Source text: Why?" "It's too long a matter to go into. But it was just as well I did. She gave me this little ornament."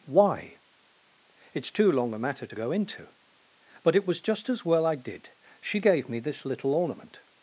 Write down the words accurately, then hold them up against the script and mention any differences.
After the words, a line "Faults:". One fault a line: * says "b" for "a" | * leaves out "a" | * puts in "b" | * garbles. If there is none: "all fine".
Why?" "It's too long a matter to go into. But it was just as well I did. She gave me this little ornament."
Faults:
all fine